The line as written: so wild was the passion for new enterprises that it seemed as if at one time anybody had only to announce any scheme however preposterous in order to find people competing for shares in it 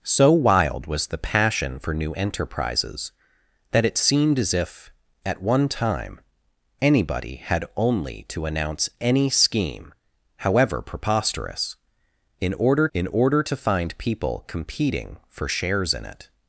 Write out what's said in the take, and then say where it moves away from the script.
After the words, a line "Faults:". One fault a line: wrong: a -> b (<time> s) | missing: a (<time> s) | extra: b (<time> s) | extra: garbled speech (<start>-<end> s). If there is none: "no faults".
so wild was the passion for new enterprises that it seemed as if at one time anybody had only to announce any scheme however preposterous in order in order to find people competing for shares in it
Faults:
extra: in order (12.9 s)